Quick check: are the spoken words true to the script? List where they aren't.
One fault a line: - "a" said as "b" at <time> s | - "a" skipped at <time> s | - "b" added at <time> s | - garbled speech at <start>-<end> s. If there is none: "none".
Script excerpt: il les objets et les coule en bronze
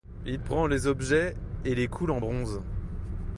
- "prend" added at 0.4 s